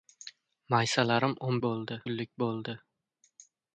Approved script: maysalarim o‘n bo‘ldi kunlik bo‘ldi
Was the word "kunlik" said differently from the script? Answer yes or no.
no